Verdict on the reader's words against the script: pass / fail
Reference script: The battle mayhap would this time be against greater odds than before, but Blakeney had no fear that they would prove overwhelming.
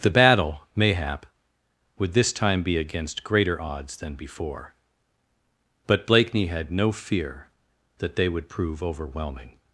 pass